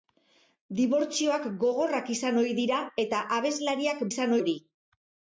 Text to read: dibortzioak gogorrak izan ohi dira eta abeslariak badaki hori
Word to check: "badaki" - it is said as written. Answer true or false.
false